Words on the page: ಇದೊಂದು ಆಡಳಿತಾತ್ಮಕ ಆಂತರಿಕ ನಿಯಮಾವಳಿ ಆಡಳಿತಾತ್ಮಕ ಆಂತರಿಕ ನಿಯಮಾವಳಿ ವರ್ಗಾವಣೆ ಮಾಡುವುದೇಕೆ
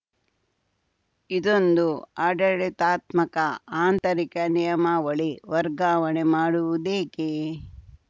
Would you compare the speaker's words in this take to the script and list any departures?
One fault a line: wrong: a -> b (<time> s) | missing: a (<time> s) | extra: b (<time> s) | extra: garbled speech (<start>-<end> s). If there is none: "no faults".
missing: ಆಡಳಿತಾತ್ಮಕ ಆಂತರಿಕ ನಿಯಮಾವಳಿ (5.3 s)